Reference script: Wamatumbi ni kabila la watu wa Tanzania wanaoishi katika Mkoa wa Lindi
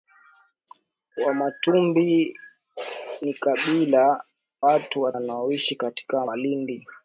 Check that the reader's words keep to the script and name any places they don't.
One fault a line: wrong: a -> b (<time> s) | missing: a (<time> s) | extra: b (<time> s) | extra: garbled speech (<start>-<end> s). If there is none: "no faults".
missing: la (4.2 s)
missing: Tanzania (5.1 s)
missing: Mkoa (6.3 s)